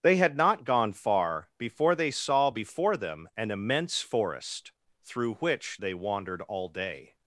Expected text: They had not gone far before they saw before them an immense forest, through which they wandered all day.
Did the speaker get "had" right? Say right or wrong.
right